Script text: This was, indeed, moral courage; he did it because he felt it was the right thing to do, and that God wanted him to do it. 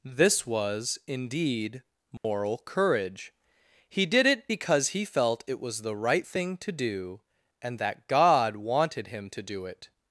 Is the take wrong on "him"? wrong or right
right